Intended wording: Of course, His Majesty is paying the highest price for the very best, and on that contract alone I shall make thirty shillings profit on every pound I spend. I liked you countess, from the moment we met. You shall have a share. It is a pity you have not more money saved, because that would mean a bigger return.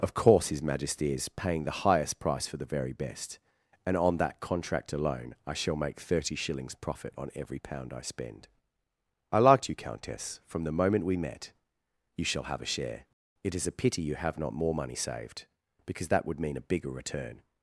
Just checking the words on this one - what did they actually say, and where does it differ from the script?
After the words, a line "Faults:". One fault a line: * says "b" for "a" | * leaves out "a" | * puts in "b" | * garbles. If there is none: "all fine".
Of course, His Majesty is paying the highest price for the very best, and on that contract alone I shall make thirty shillings profit on every pound I spend. I liked you countess, from the moment we met. You shall have a share. It is a pity you have not more money saved, because that would mean a bigger return.
Faults:
all fine